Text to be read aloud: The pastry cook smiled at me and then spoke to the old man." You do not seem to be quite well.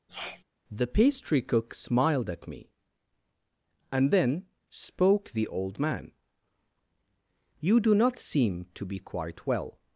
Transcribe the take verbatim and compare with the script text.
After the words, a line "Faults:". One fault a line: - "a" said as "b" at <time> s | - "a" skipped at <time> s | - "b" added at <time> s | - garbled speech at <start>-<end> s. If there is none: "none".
The pastry cook smiled at me and then spoke the old man." You do not seem to be quite well.
Faults:
- "to" skipped at 5.3 s